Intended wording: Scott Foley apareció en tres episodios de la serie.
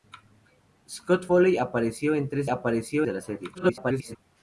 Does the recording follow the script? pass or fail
fail